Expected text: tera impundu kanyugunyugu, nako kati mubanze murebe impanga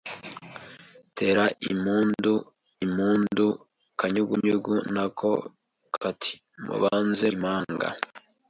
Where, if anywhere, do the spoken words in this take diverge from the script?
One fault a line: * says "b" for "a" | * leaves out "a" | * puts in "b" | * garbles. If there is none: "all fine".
* puts in "impundu"
* leaves out "murebe"